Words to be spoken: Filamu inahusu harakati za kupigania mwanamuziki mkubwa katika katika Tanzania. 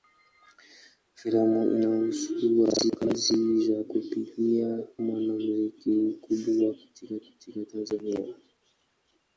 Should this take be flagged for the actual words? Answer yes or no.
no